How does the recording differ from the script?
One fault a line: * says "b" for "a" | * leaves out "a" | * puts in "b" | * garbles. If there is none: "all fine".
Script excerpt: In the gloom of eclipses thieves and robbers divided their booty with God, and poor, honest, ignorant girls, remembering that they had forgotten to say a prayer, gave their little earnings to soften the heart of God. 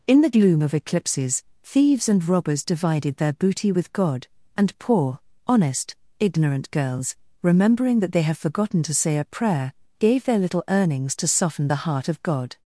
* says "have" for "had"